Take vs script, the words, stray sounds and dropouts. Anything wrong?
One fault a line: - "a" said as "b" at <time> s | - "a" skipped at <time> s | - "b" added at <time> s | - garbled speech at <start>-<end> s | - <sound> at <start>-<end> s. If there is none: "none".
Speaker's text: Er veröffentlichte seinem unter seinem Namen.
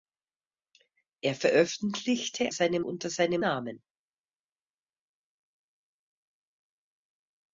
none